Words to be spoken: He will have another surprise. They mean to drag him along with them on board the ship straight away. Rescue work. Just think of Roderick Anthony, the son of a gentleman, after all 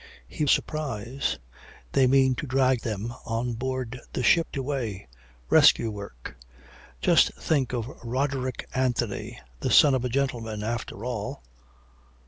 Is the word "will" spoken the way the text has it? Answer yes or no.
no